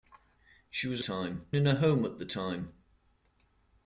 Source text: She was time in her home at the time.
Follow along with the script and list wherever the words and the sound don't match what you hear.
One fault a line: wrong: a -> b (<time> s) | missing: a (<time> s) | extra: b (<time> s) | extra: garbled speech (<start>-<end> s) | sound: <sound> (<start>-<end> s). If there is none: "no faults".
no faults